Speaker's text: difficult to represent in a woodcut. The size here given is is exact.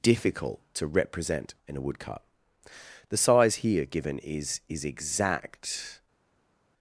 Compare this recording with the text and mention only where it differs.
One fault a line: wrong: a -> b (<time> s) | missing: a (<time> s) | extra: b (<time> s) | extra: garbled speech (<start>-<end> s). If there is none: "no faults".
no faults